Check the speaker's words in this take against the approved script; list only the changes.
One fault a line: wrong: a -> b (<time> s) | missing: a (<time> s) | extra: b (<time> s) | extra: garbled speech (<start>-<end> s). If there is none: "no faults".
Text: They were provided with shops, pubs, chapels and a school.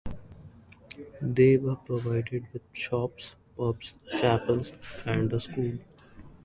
no faults